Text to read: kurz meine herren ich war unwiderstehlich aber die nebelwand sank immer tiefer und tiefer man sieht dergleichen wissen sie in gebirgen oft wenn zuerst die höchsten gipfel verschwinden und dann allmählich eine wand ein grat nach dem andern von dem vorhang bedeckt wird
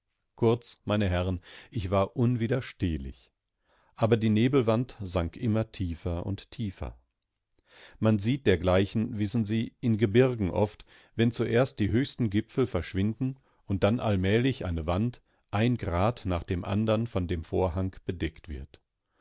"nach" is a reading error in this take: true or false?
false